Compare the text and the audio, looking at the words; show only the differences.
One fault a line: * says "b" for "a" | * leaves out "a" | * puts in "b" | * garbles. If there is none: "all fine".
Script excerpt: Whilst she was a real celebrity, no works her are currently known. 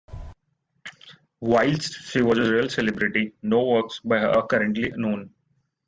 * puts in "by"